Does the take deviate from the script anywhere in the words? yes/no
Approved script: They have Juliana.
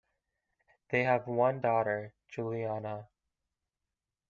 yes